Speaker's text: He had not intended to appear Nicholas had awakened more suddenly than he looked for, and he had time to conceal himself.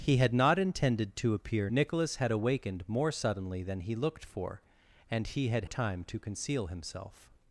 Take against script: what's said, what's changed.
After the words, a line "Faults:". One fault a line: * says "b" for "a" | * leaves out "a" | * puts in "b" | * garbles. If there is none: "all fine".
He had not intended to appear Nicholas had awakened more suddenly than he looked for, and he had time to conceal himself.
Faults:
all fine